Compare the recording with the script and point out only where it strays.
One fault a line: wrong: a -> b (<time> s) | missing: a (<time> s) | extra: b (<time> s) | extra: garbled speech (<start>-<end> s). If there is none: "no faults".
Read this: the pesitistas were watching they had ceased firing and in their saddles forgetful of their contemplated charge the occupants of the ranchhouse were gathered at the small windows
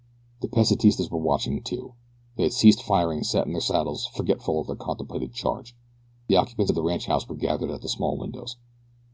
extra: too (1.6 s)
extra: sat (3.3 s)